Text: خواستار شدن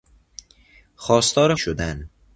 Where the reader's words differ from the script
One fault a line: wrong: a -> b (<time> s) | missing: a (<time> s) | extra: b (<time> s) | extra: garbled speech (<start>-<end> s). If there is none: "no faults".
no faults